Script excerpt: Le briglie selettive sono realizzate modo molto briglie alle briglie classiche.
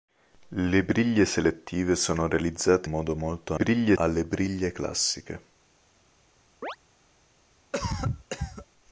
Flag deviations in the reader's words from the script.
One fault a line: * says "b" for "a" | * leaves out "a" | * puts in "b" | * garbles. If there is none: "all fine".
all fine